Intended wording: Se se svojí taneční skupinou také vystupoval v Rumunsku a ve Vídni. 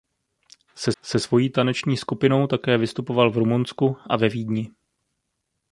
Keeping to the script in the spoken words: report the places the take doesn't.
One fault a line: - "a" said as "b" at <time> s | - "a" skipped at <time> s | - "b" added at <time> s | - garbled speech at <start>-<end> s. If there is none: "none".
none